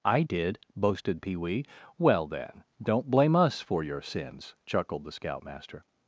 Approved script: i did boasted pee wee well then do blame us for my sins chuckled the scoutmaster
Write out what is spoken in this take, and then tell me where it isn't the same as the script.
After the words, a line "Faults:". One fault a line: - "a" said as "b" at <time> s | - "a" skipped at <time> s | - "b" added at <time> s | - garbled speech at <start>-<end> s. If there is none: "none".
i did boasted pee wee well then don't blame us for your sins chuckled the scoutmaster
Faults:
- "do" said as "don't" at 2.8 s
- "my" said as "your" at 3.8 s